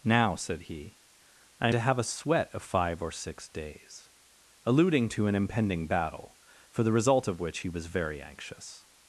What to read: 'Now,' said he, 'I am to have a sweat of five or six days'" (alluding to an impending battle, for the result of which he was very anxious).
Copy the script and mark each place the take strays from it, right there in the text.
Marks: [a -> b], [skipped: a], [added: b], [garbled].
'Now,' said he, 'I [skipped: am] to have a sweat of five or six days'" (alluding to an impending battle, for the result of which he was very anxious).